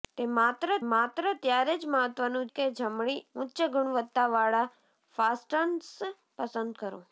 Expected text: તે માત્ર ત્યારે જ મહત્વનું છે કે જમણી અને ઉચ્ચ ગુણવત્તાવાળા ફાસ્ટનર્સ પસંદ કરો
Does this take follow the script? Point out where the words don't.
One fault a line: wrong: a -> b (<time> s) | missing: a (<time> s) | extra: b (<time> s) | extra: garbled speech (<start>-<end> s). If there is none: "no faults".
extra: માત્ર (0.8 s)
missing: છે (2.5 s)
missing: અને (3.2 s)